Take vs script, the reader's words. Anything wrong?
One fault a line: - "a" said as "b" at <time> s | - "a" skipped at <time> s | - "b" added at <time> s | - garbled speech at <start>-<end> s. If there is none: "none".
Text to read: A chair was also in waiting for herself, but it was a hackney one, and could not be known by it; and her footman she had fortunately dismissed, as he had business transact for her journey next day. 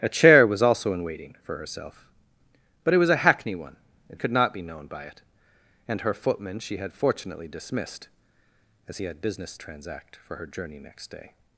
none